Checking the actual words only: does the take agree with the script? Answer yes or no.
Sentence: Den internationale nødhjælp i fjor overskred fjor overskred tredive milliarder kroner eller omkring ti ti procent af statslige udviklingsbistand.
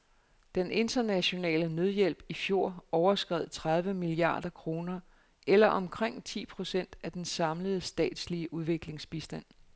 no